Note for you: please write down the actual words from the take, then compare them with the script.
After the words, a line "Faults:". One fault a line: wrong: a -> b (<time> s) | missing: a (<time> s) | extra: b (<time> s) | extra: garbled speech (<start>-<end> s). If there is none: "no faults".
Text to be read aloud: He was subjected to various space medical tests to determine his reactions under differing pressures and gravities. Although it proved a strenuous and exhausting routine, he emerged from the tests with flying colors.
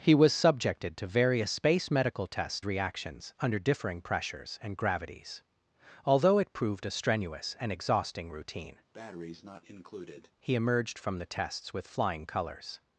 He was subjected to various space medical tests reactions under differing pressures and gravities. Although it proved a strenuous and exhausting routine, he emerged from the tests with flying colors.
Faults:
missing: to determine his (2.6 s)